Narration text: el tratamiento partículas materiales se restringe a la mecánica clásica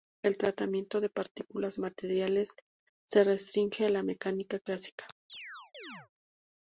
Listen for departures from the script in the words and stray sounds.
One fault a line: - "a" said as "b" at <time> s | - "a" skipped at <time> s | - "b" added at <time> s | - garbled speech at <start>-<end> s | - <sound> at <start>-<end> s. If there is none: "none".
- "de" added at 1.0 s
- chirp at 5.3-6.1 s